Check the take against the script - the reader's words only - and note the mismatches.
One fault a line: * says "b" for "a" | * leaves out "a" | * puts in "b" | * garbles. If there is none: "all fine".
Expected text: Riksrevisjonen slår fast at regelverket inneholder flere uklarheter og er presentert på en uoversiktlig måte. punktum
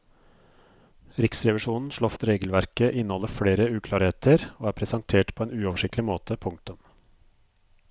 * leaves out "fast"